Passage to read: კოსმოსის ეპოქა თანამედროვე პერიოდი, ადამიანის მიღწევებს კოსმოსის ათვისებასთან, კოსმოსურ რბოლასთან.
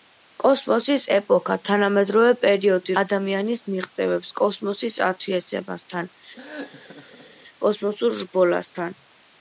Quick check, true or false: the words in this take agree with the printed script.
true